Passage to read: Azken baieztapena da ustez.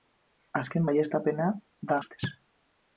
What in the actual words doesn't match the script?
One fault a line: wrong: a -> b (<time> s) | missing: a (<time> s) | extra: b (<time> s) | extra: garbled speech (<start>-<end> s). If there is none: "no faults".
no faults